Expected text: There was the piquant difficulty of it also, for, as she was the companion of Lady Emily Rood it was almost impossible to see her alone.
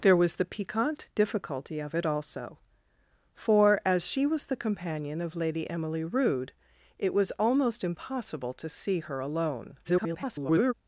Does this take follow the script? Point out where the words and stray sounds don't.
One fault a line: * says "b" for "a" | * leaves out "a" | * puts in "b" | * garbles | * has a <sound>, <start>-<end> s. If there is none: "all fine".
* garbles